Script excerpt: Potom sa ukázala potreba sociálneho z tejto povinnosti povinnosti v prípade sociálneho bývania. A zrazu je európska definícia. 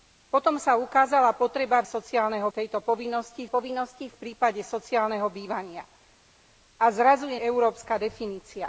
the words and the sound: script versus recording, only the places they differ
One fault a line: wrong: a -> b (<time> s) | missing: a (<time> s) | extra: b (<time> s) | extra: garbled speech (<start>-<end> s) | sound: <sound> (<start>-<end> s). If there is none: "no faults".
no faults